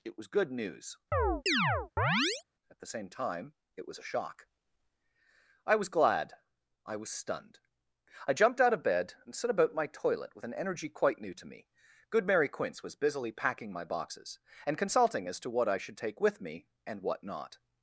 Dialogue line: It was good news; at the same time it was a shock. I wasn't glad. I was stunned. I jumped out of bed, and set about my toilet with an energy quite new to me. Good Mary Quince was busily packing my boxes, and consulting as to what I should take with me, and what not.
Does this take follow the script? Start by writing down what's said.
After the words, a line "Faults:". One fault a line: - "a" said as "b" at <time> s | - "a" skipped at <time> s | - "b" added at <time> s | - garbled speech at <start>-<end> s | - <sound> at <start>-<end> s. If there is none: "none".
It was good news; at the same time it was a shock. I was glad. I was stunned. I jumped out of bed, and set about my toilet with an energy quite new to me. Good Mary Quince was busily packing my boxes, and consulting as to what I should take with me, and what not.
Faults:
- chirp at 1.1-2.4 s
- "wasn't" said as "was" at 5.7 s